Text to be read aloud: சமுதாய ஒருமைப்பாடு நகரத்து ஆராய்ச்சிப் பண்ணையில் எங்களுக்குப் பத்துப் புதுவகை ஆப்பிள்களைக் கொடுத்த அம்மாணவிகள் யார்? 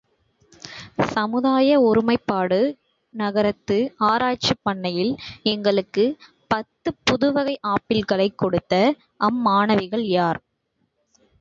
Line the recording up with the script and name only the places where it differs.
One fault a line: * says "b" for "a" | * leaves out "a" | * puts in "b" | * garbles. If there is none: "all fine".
all fine